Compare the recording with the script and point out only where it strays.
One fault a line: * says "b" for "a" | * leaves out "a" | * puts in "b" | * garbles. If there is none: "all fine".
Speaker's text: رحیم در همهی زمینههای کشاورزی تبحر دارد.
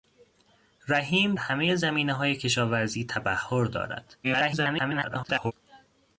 * leaves out "در"
* garbles